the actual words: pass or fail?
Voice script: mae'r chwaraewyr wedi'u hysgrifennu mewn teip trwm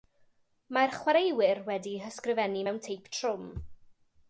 pass